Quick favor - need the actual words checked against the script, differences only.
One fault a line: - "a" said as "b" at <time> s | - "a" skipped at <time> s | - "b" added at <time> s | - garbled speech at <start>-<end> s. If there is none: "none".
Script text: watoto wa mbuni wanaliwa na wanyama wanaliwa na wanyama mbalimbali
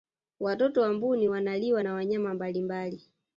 - "wanaliwa na wanyama" skipped at 2.3 s